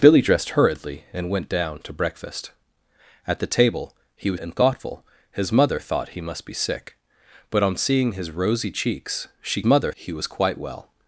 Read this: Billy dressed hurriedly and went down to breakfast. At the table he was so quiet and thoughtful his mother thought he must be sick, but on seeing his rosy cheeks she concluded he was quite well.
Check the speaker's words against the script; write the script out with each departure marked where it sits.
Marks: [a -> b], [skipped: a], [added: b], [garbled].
Billy dressed hurriedly and went down to breakfast. At the table he was [skipped: so quiet] and thoughtful his mother thought he must be sick, but on seeing his rosy cheeks she [concluded -> mother] he was quite well.